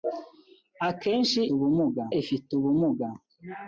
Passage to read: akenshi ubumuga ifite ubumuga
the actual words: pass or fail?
pass